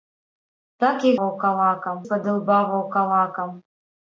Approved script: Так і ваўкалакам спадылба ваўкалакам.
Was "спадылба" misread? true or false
false